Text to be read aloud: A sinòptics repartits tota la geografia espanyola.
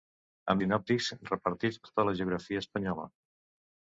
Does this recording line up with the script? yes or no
yes